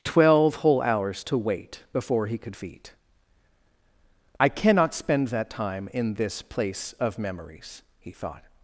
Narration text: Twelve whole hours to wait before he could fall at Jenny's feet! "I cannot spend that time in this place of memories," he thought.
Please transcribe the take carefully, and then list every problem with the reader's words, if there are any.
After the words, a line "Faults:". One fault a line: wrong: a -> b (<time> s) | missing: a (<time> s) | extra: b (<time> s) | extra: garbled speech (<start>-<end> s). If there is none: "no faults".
Twelve whole hours to wait before he could feet! "I cannot spend that time in this place of memories," he thought.
Faults:
missing: fall at Jenny's (2.5 s)